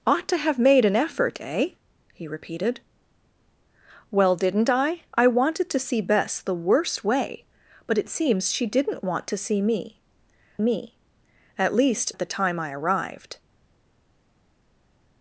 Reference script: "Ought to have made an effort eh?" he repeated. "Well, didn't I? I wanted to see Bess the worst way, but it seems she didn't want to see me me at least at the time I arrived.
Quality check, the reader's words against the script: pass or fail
pass